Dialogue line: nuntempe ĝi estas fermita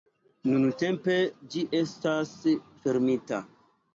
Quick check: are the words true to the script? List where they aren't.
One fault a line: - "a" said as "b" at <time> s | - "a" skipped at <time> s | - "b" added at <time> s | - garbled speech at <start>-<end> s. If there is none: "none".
none